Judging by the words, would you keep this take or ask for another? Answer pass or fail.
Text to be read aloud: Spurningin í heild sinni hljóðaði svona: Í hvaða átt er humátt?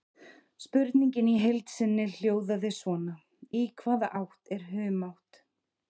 pass